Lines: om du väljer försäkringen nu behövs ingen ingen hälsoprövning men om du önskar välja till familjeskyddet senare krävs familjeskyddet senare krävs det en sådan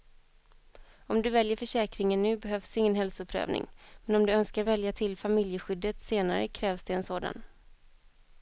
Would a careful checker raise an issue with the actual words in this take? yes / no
yes